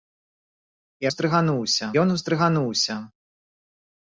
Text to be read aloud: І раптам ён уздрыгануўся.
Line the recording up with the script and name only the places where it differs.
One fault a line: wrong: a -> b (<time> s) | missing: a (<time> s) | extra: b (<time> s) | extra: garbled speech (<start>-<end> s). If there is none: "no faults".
wrong: раптам -> уздрыгануўся (1.1 s)